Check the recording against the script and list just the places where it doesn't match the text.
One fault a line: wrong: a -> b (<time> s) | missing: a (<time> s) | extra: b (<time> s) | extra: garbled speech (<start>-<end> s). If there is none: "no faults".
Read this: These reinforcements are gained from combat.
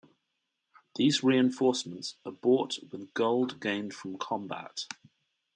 extra: bought with gold (2.3 s)